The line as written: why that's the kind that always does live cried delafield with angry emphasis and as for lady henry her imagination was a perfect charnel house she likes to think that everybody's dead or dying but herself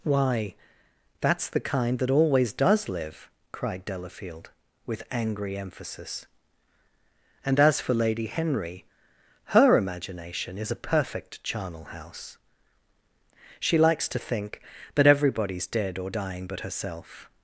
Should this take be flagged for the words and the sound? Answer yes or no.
yes